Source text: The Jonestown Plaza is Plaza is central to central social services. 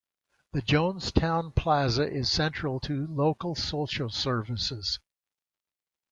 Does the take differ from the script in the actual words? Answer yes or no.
yes